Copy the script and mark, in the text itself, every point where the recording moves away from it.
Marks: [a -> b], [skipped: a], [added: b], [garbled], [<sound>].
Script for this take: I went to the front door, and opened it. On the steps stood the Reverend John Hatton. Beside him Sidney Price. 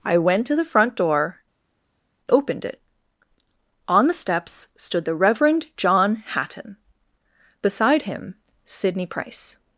I went to the front door, [skipped: and] opened it. On the steps stood the Reverend John Hatton. Beside him Sidney Price.